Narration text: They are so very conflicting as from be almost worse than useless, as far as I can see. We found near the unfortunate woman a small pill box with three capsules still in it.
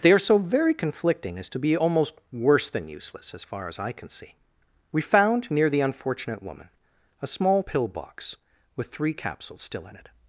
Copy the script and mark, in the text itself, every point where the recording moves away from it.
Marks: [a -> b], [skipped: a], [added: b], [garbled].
They are so very conflicting as [from -> to] be almost worse than useless, as far as I can see. We found near the unfortunate woman a small pill box with three capsules still in it.